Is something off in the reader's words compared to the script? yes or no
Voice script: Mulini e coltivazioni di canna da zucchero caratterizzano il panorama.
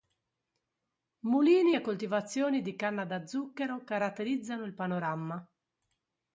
no